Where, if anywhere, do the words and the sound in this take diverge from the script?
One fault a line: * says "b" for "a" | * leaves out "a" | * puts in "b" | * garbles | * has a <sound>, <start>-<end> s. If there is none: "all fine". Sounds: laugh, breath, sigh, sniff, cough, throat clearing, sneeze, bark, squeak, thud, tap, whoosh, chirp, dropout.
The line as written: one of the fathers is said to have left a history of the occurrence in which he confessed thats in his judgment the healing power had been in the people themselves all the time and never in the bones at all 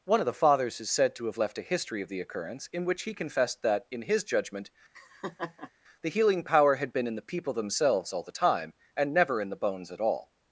* says "that" for "thats"
* has a laugh, 4.9-5.7 s